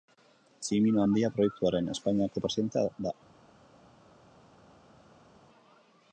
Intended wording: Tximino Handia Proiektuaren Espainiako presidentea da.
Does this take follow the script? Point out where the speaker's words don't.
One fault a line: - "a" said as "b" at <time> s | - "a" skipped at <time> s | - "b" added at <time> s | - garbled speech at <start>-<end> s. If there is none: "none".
none